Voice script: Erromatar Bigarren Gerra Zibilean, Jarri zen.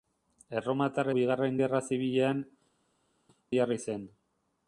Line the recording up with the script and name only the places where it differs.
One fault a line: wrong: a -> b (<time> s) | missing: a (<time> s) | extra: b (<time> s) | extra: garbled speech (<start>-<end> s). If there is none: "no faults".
no faults